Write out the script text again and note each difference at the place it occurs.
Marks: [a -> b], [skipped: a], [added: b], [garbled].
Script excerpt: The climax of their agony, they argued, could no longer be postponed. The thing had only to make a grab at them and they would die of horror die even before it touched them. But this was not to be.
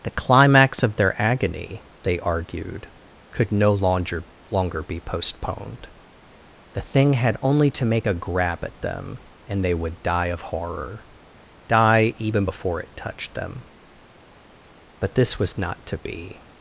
The climax of their agony, they argued, could no longer [added: longer] be postponed. The thing had only to make a grab at them and they would die of horror die even before it touched them. But this was not to be.